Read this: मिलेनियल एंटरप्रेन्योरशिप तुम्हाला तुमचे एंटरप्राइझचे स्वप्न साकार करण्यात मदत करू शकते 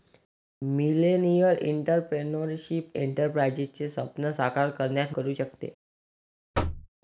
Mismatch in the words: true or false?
true